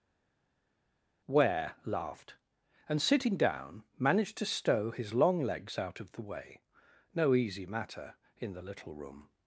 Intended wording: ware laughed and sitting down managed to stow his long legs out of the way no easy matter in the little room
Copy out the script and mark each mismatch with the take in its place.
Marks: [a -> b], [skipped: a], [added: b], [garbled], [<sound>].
ware laughed and sitting down managed to stow his long legs out of the way no easy matter in the little room